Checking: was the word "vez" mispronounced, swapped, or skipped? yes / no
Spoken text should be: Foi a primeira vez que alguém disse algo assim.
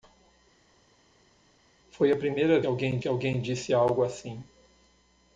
yes